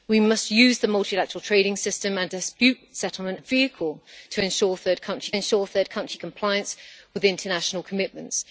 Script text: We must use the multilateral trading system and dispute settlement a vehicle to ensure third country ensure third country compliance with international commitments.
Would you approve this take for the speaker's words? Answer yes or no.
yes